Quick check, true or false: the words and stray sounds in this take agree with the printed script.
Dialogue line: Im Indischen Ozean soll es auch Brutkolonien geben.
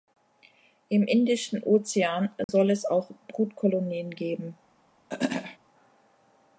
false